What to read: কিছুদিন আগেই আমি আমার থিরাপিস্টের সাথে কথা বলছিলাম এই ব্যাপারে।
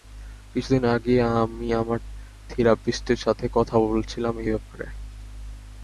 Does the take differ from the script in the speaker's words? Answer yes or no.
no